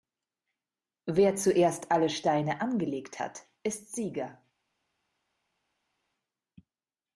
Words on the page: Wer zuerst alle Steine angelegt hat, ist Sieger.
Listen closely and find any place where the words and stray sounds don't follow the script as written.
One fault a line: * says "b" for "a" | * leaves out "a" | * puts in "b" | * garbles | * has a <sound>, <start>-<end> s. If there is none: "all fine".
all fine